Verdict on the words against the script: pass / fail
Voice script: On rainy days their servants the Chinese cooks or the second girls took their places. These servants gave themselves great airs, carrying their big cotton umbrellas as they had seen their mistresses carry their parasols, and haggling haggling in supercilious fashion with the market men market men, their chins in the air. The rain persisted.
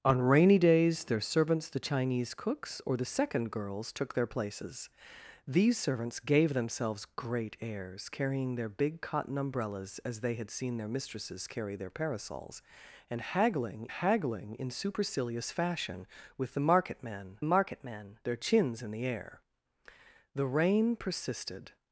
pass